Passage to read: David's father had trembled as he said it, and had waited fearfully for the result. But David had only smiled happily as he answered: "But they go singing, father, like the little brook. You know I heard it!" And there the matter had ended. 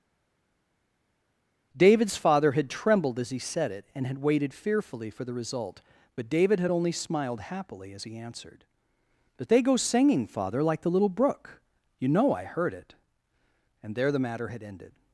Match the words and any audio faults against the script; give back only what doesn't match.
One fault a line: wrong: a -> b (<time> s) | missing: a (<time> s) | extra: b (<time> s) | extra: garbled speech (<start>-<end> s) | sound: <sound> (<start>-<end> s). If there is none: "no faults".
no faults